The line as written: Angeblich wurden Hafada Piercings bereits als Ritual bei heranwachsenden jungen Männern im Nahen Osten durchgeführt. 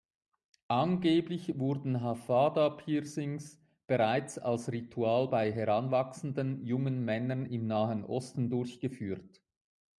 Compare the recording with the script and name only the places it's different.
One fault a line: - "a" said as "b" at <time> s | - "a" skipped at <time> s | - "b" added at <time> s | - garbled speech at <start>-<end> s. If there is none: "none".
none